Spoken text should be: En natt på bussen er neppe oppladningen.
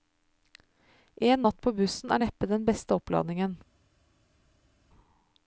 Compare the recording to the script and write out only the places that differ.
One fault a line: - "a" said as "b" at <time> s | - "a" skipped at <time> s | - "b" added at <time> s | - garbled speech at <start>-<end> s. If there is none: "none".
- "den beste" added at 2.5 s